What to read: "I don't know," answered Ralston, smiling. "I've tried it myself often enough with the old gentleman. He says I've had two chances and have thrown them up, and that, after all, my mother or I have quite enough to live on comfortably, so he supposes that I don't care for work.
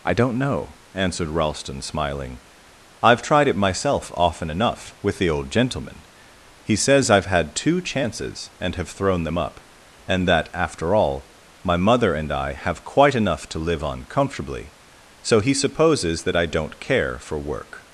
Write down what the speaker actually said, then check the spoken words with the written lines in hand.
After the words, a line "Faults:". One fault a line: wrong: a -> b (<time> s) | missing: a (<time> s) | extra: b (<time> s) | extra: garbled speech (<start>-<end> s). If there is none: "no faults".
"I don't know," answered Ralston, smiling. "I've tried it myself often enough with the old gentleman. He says I've had two chances and have thrown them up, and that, after all, my mother and I have quite enough to live on comfortably, so he supposes that I don't care for work.
Faults:
wrong: or -> and (12.1 s)